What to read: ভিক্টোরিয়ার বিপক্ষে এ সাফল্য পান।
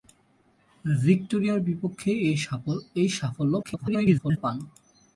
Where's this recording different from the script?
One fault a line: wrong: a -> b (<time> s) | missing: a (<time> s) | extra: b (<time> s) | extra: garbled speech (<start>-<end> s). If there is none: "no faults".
extra: garbled speech (3.6-4.4 s)